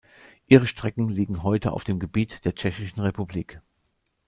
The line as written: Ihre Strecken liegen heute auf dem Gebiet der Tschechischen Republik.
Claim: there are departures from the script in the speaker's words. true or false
false